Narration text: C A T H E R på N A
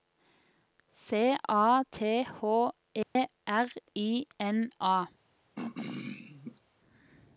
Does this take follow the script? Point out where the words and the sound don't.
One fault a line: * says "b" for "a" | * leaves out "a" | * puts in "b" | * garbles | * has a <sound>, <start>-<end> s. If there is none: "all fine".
* has a dropout, 3.0-3.2 s
* says "I" for "på"
* has a throat clearing, 5.5-6.6 s